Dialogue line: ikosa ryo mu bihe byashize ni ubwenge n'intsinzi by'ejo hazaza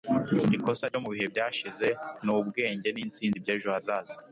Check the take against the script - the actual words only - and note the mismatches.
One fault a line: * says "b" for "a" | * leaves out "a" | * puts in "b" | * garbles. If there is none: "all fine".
all fine